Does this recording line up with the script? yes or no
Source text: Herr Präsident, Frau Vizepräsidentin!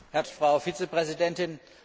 no